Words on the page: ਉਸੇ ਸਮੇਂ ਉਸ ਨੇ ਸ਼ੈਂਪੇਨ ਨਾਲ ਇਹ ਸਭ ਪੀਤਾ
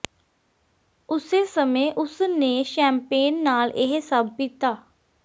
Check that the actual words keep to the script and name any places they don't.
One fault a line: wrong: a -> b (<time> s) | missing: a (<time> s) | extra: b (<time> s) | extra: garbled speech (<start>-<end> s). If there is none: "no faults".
no faults